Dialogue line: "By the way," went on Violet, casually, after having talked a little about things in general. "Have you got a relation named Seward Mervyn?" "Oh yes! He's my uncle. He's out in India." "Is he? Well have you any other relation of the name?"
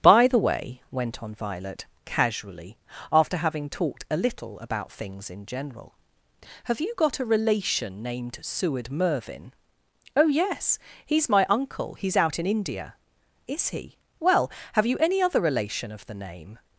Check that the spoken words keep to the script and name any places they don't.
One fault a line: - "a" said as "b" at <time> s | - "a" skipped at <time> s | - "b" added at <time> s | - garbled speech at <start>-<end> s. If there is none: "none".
none